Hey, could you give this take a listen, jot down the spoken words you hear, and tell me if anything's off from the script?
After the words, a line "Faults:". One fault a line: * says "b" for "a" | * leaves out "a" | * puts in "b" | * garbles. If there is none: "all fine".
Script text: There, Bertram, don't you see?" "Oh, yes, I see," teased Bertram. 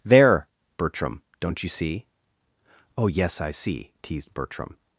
There, Bertram, don't you see?" "Oh, yes, I see," teased Bertram.
Faults:
all fine